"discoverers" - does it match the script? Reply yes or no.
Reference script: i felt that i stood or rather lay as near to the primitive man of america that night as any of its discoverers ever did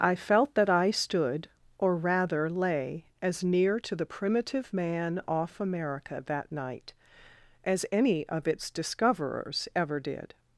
yes